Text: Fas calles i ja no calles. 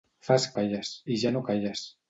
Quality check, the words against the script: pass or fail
pass